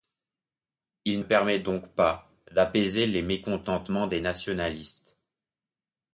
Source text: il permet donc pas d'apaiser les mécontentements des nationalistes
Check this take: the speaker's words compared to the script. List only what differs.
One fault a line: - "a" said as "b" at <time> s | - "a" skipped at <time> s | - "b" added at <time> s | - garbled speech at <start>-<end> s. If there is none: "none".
none